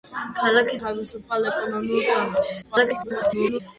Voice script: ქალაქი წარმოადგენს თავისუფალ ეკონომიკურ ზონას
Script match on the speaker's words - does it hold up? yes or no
no